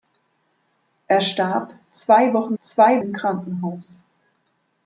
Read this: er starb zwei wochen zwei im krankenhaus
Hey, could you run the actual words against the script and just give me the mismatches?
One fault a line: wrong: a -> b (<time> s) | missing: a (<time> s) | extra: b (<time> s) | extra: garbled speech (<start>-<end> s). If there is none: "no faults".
no faults